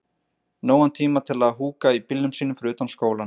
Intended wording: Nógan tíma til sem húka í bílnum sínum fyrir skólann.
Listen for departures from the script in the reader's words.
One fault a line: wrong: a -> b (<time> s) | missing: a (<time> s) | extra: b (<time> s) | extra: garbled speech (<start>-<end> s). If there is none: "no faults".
wrong: sem -> að (1.5 s)
extra: utan (2.8 s)